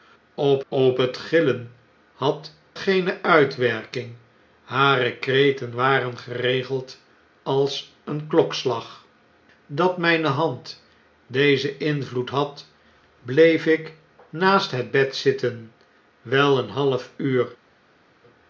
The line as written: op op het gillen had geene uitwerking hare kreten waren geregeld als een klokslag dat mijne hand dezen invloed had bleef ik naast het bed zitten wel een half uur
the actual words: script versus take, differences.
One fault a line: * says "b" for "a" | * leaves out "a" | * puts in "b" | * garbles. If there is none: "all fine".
all fine